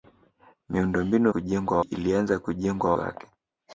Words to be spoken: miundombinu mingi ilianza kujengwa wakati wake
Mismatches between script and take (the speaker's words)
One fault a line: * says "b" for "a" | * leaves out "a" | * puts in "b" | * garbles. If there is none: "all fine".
* says "kujengwa" for "mingi"
* leaves out "wakati"